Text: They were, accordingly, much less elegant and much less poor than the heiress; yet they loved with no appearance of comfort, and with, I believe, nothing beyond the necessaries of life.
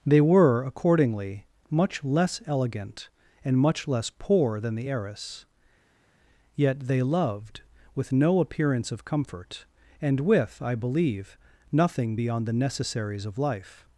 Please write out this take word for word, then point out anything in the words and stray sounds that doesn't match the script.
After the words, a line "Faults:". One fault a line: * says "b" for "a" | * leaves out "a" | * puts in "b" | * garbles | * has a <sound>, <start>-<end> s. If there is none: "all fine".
They were, accordingly, much less elegant and much less poor than the heiress; yet they loved with no appearance of comfort, and with, I believe, nothing beyond the necessaries of life.
Faults:
all fine